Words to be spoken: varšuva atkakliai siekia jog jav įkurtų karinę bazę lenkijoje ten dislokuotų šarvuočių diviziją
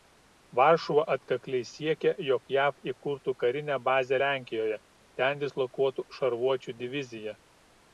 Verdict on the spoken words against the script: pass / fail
pass